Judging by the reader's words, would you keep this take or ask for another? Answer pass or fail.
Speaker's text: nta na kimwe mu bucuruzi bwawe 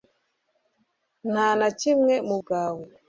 fail